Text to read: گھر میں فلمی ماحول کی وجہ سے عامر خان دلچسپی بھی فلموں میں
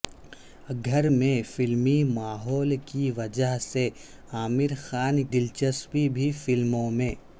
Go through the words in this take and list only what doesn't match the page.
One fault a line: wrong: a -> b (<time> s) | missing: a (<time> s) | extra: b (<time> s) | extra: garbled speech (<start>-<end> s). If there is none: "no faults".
no faults